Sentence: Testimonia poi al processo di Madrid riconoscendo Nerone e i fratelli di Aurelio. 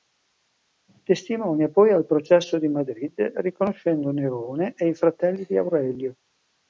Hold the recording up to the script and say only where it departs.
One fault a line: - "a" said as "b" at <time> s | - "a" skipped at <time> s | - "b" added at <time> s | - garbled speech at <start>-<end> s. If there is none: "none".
none